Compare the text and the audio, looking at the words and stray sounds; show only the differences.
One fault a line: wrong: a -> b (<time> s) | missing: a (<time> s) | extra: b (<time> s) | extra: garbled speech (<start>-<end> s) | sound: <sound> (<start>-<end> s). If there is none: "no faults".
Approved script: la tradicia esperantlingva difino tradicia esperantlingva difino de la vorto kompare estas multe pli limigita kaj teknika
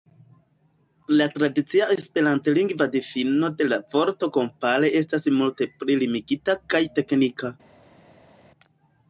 missing: tradicia esperantlingva difino (3.5 s)